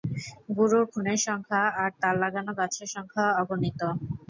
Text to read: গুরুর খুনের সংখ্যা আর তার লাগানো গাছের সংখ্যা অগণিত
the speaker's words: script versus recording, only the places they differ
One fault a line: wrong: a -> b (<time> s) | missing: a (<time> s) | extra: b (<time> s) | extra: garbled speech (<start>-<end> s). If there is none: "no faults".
no faults